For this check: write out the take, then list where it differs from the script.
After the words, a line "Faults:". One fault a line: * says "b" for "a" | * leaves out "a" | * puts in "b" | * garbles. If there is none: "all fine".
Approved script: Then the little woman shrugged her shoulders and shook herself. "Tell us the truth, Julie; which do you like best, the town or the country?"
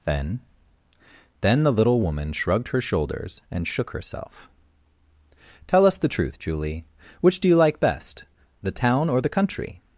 Then then the little woman shrugged her shoulders and shook herself. "Tell us the truth, Julie; which do you like best, the town or the country?"
Faults:
* puts in "then"